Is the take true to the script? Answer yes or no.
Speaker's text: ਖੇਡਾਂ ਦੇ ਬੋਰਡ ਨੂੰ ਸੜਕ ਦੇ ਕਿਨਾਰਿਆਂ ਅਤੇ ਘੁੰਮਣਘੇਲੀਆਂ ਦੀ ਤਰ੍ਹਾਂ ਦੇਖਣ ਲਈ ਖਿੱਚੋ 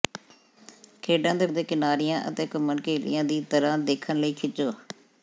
no